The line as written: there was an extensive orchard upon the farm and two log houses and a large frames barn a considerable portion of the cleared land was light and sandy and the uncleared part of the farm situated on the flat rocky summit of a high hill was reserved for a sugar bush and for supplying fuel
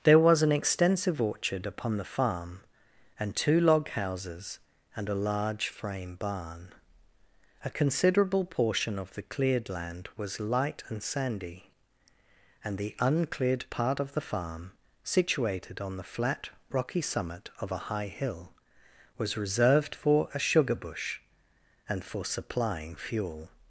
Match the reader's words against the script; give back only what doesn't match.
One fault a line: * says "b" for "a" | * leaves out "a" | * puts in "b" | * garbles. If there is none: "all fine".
* says "frame" for "frames"